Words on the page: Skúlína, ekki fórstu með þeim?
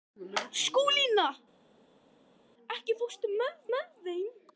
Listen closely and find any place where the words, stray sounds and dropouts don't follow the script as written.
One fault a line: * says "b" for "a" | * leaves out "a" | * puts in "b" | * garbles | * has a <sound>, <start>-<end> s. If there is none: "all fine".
* puts in "með"